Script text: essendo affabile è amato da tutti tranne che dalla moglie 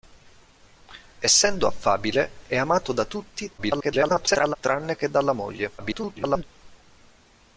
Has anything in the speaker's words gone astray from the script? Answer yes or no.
yes